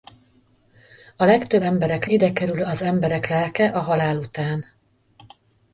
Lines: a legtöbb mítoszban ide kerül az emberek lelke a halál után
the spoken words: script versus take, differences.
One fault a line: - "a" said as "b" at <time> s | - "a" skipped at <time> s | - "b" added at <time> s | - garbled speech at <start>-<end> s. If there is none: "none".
- "mítoszban" said as "emberek" at 1.6 s